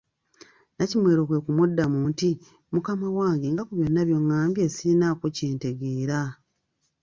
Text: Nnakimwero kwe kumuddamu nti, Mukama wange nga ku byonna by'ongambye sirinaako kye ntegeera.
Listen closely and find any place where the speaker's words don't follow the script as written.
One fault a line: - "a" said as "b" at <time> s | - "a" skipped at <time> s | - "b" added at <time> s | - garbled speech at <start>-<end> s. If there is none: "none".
none